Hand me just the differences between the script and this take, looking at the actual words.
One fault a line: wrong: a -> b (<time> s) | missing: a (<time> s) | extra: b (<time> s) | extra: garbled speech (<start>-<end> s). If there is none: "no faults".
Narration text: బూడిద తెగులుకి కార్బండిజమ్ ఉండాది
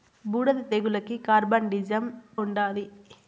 no faults